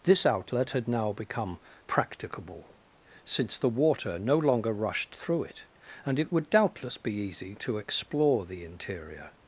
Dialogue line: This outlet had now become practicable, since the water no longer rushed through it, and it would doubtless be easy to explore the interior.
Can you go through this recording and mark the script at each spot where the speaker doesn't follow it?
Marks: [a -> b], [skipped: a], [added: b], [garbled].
This outlet had now become practicable, since the water no longer rushed through it, and it would doubtless be easy to explore the interior.